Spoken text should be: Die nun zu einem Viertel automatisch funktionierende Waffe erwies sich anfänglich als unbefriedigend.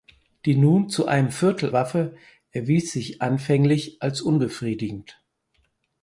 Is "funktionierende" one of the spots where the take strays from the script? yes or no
yes